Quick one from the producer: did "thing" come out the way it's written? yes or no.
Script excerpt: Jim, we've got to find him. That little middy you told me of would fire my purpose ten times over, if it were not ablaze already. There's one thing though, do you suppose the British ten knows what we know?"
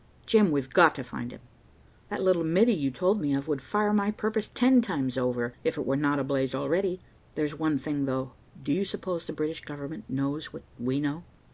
yes